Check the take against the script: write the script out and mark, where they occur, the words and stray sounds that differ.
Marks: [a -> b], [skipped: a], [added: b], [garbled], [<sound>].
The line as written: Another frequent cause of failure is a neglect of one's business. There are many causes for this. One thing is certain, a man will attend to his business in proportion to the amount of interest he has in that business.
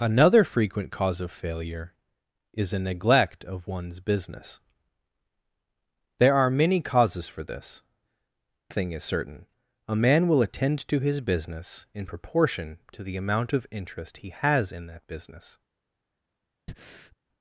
Another frequent cause of failure is a neglect of one's business. There are many causes for this. [skipped: One] thing is certain, a man will attend to his business in proportion to the amount of interest he has in that business. [breath]